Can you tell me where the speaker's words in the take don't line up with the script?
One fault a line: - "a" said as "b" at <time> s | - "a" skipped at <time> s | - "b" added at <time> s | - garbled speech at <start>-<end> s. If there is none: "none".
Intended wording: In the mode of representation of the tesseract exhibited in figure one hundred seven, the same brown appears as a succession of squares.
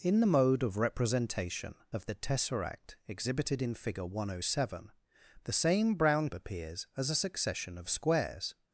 none